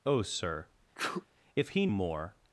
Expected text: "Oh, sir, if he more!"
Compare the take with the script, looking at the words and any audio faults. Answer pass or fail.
fail